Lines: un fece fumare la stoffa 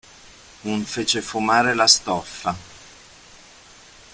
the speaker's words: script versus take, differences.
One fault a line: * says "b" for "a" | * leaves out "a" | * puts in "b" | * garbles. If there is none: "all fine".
all fine